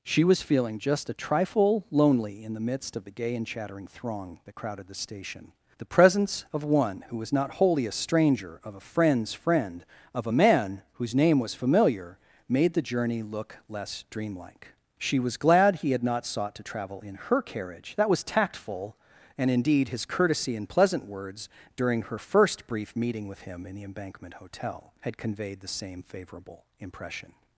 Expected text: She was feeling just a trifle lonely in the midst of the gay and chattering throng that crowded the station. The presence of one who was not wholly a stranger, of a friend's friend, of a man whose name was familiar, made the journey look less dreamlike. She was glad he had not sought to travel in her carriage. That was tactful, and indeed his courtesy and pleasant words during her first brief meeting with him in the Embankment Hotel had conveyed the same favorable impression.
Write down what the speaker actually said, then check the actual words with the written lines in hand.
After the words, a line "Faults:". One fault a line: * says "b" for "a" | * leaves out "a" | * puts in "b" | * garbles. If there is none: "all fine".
She was feeling just a trifle lonely in the midst of the gay and chattering throng that crowded the station. The presence of one who was not wholly a stranger, of a friend's friend, of a man whose name was familiar, made the journey look less dreamlike. She was glad he had not sought to travel in her carriage. That was tactful, and indeed his courtesy and pleasant words during her first brief meeting with him in the Embankment Hotel had conveyed the same favorable impression.
Faults:
all fine